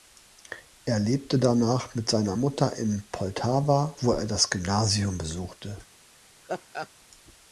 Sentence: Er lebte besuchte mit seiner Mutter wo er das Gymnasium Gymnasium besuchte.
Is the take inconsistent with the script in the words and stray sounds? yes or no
yes